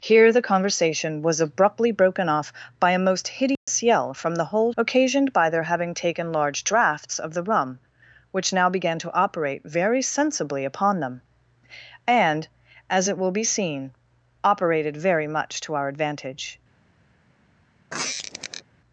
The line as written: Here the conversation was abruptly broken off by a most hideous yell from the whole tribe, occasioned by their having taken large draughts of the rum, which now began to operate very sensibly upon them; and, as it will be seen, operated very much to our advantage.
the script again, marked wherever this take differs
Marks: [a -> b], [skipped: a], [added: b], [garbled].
Here the conversation was abruptly broken off by a most hideous yell from the whole [skipped: tribe,] occasioned by their having taken large draughts of the rum, which now began to operate very sensibly upon them; and, as it will be seen, operated very much to our advantage.